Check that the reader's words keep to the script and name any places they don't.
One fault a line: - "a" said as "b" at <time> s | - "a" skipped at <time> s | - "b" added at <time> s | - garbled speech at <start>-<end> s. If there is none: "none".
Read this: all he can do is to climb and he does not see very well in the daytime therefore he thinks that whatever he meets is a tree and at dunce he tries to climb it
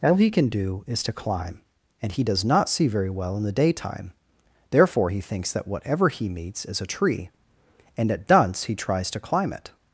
none